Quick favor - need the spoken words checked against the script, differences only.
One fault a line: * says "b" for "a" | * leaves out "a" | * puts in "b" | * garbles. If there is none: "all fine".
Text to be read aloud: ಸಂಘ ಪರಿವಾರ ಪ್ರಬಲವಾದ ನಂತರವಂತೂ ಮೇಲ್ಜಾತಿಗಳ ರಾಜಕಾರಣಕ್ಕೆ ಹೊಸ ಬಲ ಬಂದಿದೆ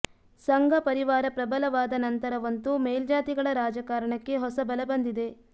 all fine